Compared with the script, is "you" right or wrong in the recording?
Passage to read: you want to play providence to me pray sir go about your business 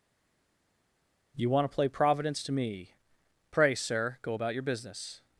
right